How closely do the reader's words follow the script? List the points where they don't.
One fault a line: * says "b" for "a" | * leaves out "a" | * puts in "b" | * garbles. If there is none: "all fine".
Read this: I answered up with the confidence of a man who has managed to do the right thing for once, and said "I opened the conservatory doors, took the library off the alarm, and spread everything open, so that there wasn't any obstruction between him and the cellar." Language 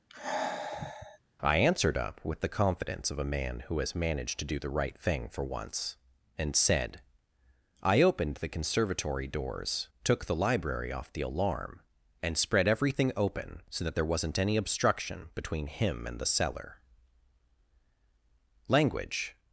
all fine